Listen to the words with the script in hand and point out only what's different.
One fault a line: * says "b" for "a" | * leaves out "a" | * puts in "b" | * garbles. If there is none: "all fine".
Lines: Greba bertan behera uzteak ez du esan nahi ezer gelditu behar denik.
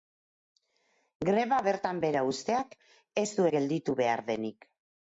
* leaves out "esan nahi ezer"